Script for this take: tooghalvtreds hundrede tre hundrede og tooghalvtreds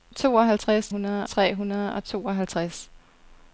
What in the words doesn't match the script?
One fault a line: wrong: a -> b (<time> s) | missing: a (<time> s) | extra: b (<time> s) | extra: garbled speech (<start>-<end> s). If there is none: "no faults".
no faults